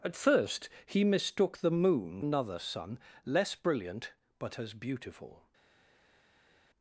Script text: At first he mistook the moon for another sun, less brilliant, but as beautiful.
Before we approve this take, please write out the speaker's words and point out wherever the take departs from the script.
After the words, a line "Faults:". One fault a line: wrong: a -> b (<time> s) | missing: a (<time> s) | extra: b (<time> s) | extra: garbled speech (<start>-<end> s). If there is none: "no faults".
At first he mistook the moon another sun, less brilliant, but as beautiful.
Faults:
missing: for (2.2 s)